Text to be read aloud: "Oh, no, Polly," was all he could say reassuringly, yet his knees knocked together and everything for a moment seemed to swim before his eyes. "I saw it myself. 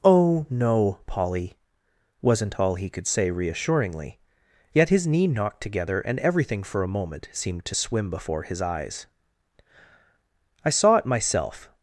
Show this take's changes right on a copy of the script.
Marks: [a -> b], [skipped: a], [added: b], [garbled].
"Oh, no, Polly," [was -> wasn't] all he could say reassuringly, yet his [knees -> knee] knocked together and everything for a moment seemed to swim before his eyes. "I saw it myself.